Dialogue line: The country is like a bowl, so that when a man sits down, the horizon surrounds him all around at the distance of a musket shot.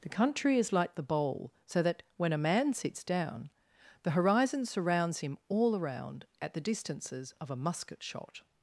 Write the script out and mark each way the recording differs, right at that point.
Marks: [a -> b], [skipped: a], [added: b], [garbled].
The country is like [a -> the] bowl, so that when a man sits down, the horizon surrounds him all around at the [distance -> distances] of a musket shot.